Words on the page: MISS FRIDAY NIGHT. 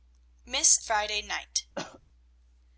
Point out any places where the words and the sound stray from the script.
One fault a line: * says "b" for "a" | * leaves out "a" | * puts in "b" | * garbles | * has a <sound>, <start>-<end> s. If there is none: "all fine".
* has a cough, 1.8-2.0 s